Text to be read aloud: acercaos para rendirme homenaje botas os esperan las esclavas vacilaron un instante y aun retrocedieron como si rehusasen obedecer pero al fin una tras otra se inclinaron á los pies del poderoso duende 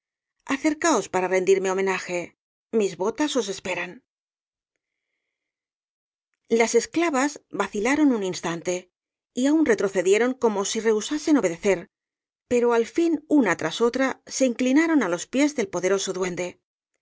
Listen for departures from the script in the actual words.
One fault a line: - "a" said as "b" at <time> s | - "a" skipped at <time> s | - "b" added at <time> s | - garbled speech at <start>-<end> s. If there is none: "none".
- "mis" added at 2.8 s